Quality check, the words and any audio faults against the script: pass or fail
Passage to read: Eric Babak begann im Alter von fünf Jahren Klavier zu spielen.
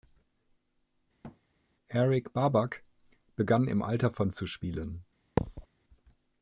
fail